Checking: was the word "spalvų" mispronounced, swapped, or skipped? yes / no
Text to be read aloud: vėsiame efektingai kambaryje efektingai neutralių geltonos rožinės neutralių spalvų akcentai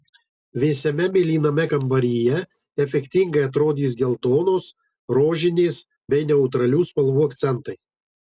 no